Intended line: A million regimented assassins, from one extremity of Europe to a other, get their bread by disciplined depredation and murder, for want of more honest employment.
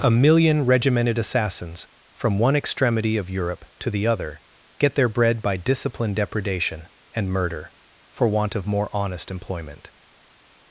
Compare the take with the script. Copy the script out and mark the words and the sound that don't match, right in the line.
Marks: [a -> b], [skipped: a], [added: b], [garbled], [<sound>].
A million regimented assassins, from one extremity of Europe to [a -> the] other, get their bread by disciplined depredation and murder, for want of more honest employment.